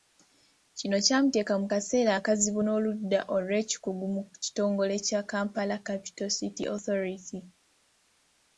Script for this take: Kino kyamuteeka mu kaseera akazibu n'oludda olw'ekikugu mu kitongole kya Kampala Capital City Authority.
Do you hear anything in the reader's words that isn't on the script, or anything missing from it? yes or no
no